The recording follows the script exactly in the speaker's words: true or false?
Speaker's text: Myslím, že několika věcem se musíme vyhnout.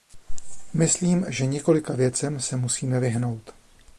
true